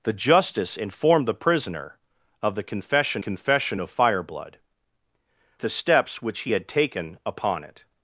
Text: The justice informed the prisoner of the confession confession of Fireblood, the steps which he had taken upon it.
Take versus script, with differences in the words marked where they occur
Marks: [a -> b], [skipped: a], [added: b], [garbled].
The justice informed the prisoner of the confession confession of Fireblood, the steps which he had taken upon it.